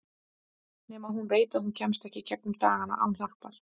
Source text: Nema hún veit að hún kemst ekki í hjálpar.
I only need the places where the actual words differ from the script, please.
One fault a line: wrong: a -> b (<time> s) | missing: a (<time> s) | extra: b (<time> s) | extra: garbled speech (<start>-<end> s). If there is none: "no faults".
extra: gegnum dagana án (2.3 s)